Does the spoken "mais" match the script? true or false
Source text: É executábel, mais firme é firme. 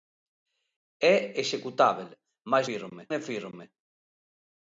true